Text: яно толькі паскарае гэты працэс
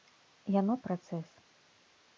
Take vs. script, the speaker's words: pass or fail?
fail